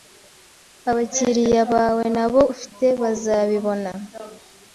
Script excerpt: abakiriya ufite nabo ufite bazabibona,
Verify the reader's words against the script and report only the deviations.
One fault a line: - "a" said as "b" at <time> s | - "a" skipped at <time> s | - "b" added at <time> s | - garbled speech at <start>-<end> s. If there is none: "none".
- "ufite" said as "bawe" at 1.7 s